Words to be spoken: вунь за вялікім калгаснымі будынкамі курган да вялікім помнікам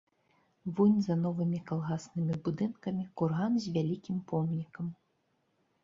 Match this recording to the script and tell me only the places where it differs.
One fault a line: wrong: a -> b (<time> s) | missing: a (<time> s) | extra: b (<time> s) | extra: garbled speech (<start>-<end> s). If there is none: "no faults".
wrong: вялікім -> новымі (1.2 s)
wrong: да -> з (3.7 s)